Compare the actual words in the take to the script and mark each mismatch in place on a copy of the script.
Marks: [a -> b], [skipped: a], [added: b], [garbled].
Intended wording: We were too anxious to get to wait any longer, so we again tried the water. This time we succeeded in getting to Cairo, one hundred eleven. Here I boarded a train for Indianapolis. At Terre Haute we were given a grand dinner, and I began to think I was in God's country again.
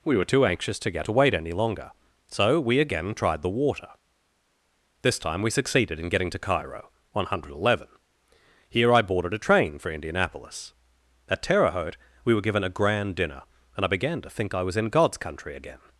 We were too anxious to get to wait any longer, so we again tried the water. This time we succeeded in getting to Cairo, one hundred eleven. Here I boarded a train for Indianapolis. At Terre Haute we were given a grand dinner, and I began to think I was in God's country again.